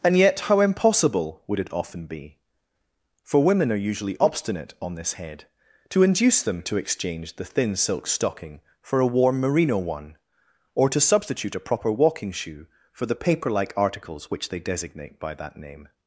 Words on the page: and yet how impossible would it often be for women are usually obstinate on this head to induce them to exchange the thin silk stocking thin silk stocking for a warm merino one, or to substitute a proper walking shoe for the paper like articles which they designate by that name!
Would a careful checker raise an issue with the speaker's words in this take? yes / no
yes